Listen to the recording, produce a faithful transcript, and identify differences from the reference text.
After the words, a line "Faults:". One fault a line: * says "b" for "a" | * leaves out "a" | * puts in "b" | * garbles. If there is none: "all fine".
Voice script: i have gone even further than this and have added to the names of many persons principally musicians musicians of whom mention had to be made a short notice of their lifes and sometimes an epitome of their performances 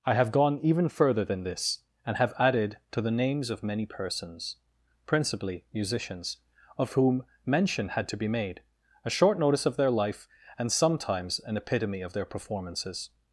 i have gone even further than this and have added to the names of many persons principally musicians of whom mention had to be made a short notice of their life and sometimes an epitome of their performances
Faults:
* leaves out "musicians"
* says "life" for "lifes"